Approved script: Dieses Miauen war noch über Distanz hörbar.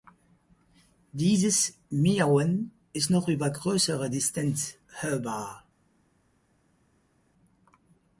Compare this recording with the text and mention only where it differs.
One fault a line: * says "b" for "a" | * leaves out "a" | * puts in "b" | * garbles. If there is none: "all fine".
* says "ist" for "war"
* puts in "größere"